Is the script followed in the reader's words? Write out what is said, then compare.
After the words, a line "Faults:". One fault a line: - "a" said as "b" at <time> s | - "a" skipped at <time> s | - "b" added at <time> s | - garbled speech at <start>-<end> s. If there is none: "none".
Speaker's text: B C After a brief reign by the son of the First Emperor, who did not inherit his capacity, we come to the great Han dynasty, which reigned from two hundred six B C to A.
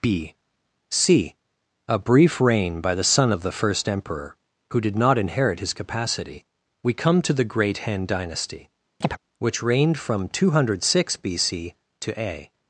B C a brief reign by the son of the First Emperor, who did not inherit his capacity, we come to the great Han dynasty, which reigned from two hundred six B C to A.
Faults:
- "After" skipped at 1.4 s